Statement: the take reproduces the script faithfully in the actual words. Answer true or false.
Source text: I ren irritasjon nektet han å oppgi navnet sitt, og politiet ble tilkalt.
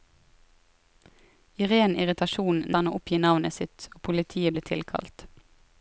false